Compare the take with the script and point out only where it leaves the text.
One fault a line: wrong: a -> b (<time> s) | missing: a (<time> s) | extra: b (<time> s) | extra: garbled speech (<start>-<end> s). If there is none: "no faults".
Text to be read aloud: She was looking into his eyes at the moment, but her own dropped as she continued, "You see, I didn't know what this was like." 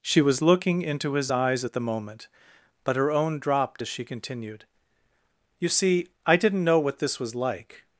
no faults